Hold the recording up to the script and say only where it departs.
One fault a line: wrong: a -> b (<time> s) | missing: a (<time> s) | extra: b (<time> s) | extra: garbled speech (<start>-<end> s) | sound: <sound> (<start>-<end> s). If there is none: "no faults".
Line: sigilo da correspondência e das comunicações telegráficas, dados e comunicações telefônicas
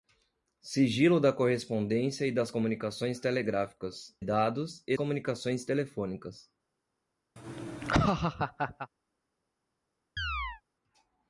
sound: laugh (7.4-8.9 s)
sound: chirp (10.2-10.6 s)